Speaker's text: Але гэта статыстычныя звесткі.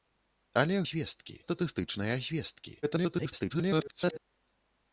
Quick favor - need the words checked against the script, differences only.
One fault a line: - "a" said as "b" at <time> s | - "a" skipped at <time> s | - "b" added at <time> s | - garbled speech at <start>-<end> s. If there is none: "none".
- "гэта" said as "звесткі" at 0.9 s
- garbled speech at 2.8-4.2 s